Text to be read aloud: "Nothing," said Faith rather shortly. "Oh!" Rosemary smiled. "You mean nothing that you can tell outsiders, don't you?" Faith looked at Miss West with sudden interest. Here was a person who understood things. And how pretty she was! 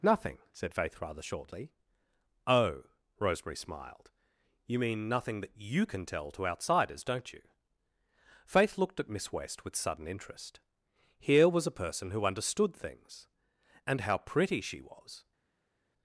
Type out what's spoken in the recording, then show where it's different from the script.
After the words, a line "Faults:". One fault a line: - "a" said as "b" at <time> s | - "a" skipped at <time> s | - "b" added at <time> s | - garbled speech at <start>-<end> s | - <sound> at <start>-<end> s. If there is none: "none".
"Nothing," said Faith rather shortly. "Oh!" Rosemary smiled. "You mean nothing that you can tell to outsiders, don't you?" Faith looked at Miss West with sudden interest. Here was a person who understood things. And how pretty she was!
Faults:
- "to" added at 6.3 s